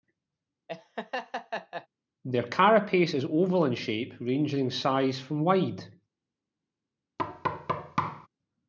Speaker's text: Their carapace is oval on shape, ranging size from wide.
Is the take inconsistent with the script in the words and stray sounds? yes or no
yes